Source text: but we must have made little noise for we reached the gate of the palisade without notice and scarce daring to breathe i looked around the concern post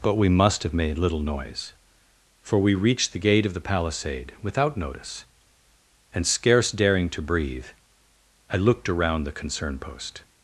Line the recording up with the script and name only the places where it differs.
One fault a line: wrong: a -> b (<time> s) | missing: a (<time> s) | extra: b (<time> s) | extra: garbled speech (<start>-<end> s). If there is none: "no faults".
no faults